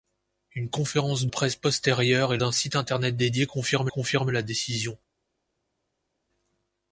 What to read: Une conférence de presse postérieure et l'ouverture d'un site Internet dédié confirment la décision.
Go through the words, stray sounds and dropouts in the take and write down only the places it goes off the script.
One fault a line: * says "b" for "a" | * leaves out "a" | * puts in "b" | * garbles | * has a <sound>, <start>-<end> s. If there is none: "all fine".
* leaves out "de"
* leaves out "l'ouverture"
* puts in "confirment"